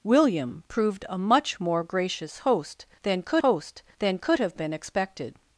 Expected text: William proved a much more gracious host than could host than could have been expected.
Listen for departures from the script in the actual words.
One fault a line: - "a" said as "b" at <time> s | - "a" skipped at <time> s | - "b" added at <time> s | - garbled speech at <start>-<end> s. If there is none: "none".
none